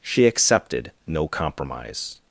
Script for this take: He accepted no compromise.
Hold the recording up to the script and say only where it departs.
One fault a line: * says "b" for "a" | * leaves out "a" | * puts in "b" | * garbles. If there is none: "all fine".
* says "She" for "He"